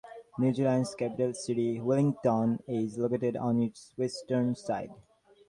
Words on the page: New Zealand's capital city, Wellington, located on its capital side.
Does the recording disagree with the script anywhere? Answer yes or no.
yes